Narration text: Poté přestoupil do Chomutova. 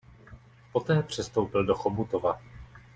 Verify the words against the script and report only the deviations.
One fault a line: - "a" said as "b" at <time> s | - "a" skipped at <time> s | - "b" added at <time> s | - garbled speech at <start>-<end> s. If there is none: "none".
none